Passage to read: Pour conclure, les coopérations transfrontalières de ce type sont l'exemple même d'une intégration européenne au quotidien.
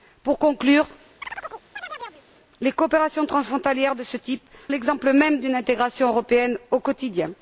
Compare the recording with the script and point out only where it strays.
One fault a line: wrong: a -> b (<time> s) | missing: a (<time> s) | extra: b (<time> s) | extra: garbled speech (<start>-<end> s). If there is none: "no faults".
missing: sont (4.4 s)